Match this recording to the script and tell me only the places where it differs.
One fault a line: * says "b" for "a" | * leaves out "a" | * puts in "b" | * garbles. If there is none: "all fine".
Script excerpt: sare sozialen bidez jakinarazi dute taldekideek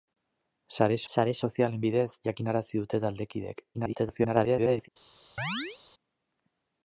* puts in "sare"
* garbles